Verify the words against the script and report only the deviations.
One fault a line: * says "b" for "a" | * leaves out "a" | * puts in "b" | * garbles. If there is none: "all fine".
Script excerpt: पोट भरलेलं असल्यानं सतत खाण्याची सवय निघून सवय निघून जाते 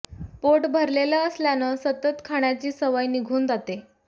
* leaves out "सवय निघून"